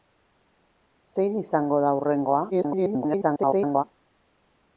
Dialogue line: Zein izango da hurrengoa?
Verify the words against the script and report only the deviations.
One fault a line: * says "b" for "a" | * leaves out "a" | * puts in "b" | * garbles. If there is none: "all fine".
* garbles